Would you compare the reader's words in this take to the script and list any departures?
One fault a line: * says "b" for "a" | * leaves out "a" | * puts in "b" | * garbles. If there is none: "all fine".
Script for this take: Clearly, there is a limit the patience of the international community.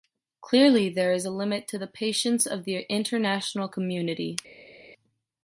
* puts in "to"